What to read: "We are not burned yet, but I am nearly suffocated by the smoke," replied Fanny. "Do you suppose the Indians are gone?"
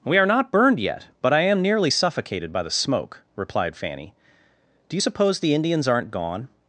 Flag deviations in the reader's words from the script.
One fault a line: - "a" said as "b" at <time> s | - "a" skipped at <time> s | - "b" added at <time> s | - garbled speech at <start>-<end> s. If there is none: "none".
- "are" said as "aren't" at 5.9 s